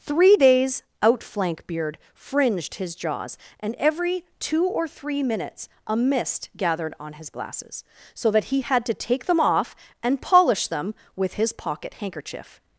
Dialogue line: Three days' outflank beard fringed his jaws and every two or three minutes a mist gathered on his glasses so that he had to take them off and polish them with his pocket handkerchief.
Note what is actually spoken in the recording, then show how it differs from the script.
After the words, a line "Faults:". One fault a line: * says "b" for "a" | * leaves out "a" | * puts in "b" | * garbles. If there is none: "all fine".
Three days' outflank beard fringed his jaws and every two or three minutes a mist gathered on his glasses so that he had to take them off and polish them with his pocket handkerchief.
Faults:
all fine